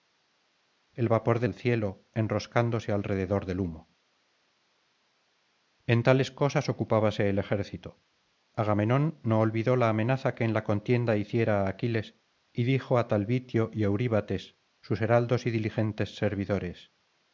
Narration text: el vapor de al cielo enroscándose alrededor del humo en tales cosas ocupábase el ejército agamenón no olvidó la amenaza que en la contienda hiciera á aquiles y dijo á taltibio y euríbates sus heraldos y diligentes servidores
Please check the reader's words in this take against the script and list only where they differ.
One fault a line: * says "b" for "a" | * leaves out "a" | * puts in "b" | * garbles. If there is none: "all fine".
all fine